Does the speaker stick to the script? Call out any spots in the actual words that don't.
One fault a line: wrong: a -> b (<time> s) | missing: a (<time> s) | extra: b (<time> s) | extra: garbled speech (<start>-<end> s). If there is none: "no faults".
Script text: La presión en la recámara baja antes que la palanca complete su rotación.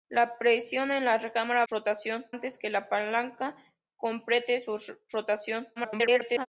wrong: baja -> rotación (1.7 s)
extra: garbled speech (5.8-6.5 s)